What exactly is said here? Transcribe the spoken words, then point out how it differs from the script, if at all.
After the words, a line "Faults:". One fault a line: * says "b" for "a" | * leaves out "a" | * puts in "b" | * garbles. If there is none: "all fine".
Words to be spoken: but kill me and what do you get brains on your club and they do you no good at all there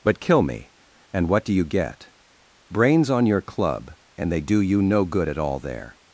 but kill me and what do you get brains on your club and they do you no good at all there
Faults:
all fine